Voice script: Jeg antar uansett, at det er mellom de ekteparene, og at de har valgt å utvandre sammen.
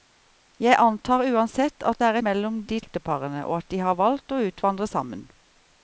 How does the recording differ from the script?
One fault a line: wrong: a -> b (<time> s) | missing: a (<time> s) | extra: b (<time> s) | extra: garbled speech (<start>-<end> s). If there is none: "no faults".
no faults